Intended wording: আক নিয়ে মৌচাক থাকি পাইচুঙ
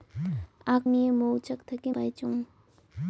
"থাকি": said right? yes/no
yes